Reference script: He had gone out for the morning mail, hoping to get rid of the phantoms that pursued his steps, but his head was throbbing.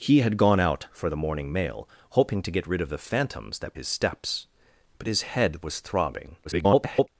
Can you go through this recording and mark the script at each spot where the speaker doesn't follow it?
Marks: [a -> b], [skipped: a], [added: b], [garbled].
He had gone out for the morning mail, hoping to get rid of the phantoms that [skipped: pursued] his steps, but his head was throbbing. [garbled]